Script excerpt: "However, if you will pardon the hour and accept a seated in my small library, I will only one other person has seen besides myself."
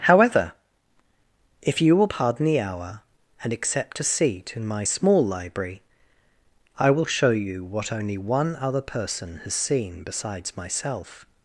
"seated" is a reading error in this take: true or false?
true